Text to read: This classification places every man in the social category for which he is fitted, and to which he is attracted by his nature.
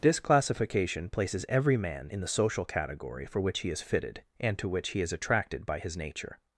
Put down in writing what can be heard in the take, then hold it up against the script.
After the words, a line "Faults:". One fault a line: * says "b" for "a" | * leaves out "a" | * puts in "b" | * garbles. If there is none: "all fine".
This classification places every man in the social category for which he is fitted, and to which he is attracted by his nature.
Faults:
all fine